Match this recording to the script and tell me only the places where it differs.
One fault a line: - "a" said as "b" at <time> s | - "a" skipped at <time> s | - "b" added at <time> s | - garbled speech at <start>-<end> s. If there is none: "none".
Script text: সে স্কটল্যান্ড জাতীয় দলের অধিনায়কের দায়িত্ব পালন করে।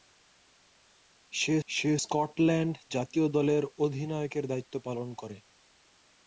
- "সে" added at 1.7 s